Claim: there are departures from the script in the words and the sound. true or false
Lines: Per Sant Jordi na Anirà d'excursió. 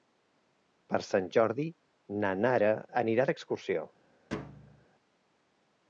true